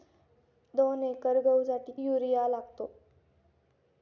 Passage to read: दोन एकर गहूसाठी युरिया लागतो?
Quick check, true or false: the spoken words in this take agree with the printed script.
true